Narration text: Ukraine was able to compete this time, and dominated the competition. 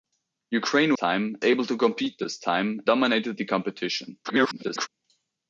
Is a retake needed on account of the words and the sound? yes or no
yes